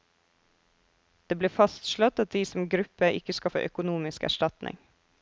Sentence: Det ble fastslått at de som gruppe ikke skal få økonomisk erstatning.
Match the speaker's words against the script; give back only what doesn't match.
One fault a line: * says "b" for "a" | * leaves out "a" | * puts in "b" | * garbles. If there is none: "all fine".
all fine